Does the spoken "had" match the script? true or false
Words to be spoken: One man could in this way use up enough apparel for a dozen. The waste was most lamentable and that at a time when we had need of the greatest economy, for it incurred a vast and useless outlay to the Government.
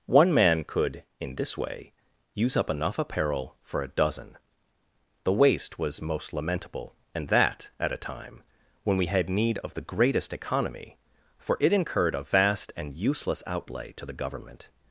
true